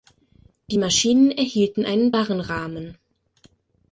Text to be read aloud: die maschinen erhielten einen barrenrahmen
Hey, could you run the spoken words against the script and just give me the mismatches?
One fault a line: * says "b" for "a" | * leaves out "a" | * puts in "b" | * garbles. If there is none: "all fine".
all fine